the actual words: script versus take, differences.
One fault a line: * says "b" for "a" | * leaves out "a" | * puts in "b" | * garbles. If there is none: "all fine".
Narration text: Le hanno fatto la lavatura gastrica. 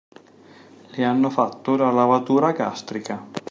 all fine